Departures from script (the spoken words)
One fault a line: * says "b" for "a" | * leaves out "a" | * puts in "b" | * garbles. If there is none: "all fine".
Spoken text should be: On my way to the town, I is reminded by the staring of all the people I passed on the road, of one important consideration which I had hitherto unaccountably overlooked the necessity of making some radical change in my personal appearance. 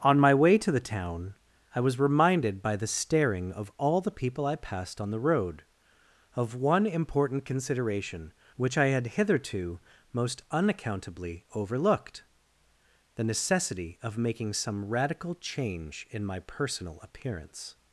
* says "was" for "is"
* puts in "most"